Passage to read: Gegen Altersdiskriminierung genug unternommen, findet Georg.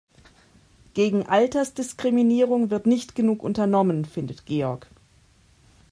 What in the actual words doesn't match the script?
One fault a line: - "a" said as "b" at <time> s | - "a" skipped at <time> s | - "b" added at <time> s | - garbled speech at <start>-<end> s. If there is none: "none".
- "wird nicht" added at 2.7 s